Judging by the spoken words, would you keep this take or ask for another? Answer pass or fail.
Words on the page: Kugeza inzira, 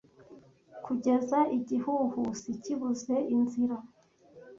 fail